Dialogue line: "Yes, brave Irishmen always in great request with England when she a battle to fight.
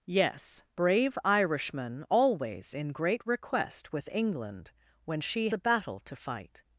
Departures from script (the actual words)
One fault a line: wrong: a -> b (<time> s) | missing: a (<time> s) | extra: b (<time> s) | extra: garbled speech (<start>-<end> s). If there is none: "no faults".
no faults